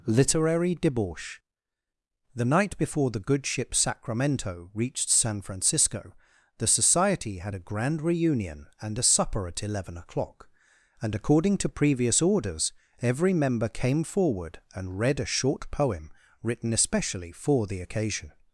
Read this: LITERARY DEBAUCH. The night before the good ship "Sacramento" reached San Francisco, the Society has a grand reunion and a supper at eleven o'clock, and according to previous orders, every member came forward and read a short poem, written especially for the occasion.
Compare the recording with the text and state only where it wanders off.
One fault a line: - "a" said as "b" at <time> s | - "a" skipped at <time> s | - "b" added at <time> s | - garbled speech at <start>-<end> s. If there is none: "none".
- "has" said as "had" at 7.4 s